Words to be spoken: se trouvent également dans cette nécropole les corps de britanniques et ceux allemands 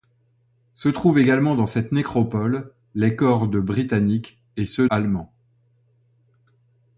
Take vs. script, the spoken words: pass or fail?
pass